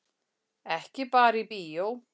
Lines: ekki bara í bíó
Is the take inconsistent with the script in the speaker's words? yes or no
no